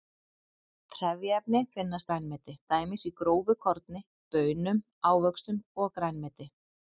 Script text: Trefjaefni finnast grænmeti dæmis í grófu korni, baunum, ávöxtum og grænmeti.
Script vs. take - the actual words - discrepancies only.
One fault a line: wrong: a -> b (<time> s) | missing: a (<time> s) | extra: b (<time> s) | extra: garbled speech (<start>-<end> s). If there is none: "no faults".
no faults